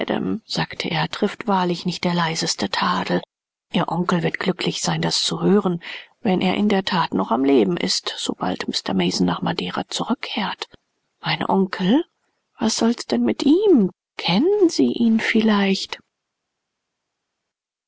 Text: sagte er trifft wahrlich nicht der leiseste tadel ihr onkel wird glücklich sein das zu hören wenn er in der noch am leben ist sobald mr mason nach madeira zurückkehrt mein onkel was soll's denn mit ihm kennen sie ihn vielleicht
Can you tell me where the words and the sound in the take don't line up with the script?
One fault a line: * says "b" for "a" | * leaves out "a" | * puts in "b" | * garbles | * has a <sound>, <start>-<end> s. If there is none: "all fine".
* puts in "that"